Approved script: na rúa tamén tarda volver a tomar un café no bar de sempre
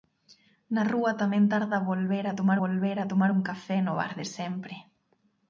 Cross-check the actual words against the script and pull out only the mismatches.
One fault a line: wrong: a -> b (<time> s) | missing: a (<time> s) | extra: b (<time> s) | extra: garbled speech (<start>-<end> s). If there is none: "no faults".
extra: volver a tomar (2.6 s)